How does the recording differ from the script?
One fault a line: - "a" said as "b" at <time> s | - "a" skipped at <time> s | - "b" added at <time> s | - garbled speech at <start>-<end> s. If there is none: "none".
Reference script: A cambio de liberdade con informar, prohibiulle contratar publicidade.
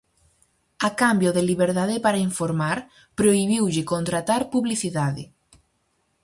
- "con" said as "para" at 2.1 s